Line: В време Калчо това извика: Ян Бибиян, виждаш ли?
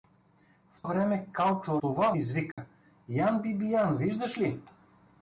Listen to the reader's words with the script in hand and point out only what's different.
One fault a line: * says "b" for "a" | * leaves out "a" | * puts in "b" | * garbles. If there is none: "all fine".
all fine